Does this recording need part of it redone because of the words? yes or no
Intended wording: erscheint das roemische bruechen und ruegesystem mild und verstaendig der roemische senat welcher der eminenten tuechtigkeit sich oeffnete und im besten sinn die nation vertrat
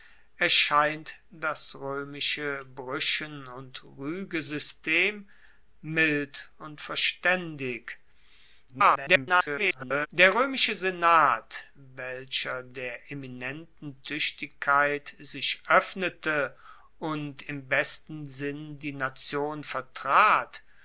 yes